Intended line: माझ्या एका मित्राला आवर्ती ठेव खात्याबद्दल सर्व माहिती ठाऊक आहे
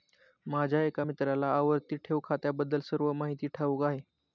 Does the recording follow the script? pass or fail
pass